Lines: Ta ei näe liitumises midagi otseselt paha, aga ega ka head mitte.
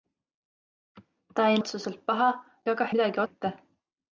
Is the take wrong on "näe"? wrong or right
wrong